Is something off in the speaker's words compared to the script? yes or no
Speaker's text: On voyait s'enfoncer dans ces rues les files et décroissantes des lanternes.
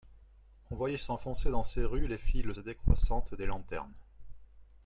no